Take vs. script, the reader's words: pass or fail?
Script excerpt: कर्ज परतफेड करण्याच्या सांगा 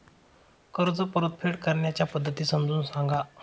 fail